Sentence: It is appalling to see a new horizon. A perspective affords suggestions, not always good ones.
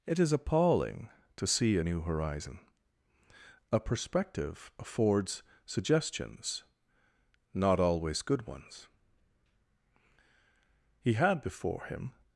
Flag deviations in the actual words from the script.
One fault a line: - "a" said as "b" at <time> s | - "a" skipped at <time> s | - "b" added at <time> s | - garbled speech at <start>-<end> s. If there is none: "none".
- "He had before him" added at 11.0 s